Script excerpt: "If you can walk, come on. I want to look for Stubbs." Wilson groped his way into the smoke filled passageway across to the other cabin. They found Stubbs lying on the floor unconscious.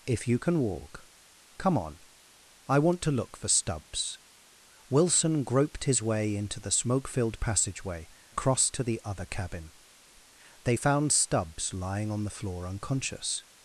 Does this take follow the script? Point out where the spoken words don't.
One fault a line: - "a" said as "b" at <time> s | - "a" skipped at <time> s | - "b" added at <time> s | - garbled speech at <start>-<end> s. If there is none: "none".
none